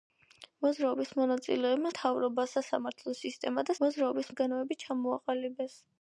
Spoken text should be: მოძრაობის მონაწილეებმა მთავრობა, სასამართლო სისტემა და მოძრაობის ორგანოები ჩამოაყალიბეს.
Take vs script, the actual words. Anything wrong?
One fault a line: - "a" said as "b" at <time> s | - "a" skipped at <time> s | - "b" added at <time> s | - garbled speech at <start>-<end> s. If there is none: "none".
none